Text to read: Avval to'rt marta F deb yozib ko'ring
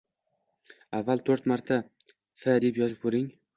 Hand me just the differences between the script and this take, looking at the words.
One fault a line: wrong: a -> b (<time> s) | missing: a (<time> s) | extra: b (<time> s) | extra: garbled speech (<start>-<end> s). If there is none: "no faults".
no faults